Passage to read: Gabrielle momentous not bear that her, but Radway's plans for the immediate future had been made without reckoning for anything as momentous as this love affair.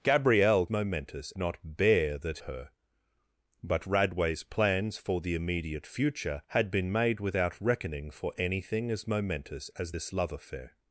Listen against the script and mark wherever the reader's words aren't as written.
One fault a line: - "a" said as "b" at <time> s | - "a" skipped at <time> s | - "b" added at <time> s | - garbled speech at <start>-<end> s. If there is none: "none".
none